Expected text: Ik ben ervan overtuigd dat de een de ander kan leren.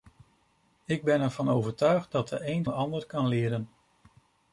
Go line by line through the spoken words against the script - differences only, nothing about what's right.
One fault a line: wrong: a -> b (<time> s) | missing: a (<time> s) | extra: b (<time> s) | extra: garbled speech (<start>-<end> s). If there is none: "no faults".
no faults